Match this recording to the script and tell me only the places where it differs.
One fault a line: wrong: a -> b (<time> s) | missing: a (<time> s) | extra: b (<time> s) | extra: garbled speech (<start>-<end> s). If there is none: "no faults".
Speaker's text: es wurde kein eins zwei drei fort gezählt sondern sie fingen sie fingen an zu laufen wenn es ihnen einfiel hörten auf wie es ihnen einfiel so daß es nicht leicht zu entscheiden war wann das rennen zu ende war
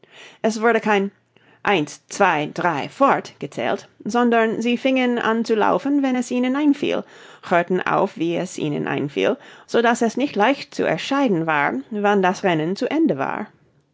missing: sie fingen (5.2 s)